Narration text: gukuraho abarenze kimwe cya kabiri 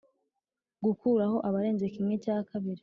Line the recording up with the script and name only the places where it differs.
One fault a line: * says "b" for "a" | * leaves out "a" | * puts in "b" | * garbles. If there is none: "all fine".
all fine